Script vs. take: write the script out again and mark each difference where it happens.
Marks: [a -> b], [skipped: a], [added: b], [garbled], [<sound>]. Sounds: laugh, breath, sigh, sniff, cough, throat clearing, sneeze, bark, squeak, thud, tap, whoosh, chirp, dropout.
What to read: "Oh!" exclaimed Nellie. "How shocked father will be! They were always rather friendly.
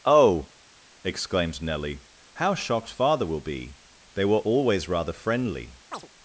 "Oh!" exclaimed Nellie. "How shocked father will be! They were always rather friendly. [chirp]